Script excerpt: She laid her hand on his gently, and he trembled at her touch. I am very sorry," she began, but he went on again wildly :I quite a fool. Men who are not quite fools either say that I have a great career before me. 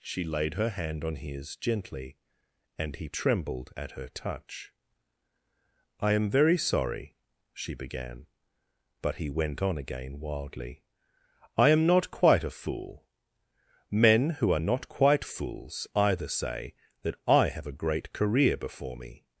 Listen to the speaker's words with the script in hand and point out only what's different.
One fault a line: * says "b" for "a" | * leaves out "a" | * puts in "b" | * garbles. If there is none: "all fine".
* puts in "am not"